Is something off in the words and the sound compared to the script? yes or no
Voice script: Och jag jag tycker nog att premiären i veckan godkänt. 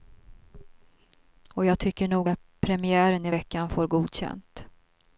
yes